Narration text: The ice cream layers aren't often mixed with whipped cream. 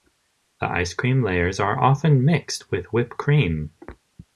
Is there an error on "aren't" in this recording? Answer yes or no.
yes